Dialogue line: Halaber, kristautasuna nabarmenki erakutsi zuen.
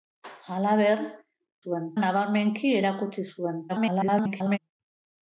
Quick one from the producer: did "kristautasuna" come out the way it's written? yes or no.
no